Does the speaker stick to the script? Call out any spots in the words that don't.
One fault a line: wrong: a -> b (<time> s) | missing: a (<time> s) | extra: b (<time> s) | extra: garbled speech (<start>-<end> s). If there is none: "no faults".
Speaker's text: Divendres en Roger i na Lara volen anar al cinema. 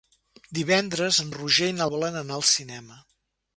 missing: Lara (1.9 s)